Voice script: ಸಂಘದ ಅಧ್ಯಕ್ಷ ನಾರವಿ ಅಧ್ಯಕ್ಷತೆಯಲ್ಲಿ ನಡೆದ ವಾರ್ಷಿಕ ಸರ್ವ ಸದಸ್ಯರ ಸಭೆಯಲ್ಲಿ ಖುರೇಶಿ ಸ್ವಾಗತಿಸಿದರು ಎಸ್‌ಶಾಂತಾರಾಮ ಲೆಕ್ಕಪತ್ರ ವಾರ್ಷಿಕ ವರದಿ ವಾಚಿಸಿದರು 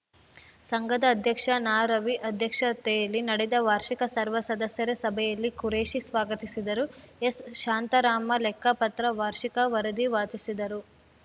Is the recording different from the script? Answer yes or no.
no